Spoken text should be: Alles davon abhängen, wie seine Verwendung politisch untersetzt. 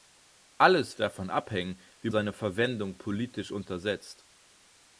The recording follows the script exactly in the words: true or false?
true